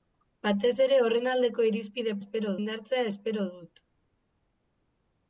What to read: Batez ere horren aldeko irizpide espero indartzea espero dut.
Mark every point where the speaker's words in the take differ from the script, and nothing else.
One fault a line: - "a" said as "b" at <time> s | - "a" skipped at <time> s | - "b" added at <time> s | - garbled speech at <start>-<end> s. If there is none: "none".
none